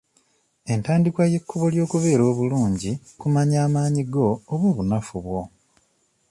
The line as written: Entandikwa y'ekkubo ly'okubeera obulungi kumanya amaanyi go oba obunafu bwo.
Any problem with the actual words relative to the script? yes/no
no